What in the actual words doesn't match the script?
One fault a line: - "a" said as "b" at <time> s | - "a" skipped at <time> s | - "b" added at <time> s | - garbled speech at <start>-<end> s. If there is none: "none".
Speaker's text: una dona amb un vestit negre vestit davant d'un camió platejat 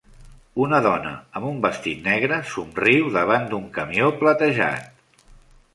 - "vestit" said as "somriu" at 2.5 s